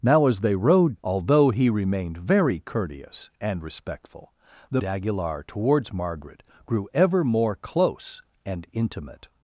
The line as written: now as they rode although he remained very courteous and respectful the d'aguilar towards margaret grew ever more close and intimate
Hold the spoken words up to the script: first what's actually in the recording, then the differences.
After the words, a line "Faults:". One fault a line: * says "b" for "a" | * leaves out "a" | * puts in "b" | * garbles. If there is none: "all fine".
now as they rode although he remained very courteous and respectful the d'aguilar towards margaret grew ever more close and intimate
Faults:
all fine